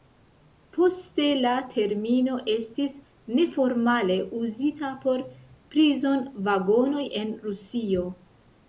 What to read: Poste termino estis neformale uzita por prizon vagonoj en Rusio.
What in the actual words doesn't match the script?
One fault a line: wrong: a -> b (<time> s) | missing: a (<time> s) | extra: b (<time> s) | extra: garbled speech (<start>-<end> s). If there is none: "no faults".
extra: la (1.4 s)